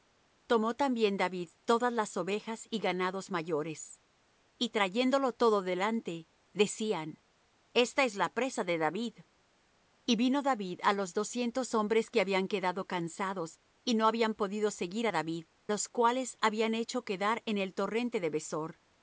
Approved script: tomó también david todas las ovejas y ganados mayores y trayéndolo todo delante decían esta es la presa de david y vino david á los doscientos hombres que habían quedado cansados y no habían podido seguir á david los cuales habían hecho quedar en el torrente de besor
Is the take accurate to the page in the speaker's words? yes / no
yes